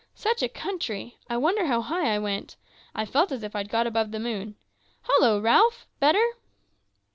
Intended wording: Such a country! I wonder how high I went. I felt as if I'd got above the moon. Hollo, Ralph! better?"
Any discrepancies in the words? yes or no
no